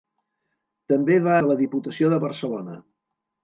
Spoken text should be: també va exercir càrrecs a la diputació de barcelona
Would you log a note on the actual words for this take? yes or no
yes